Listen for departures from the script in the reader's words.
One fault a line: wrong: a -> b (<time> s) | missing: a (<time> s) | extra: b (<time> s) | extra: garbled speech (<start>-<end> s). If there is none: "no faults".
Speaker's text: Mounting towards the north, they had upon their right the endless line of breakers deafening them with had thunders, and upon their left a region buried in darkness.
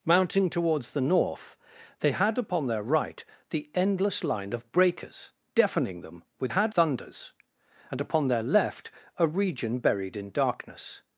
no faults